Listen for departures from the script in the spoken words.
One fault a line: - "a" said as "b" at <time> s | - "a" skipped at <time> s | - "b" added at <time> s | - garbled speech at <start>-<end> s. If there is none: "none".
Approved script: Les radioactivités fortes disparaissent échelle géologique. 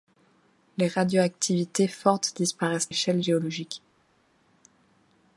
none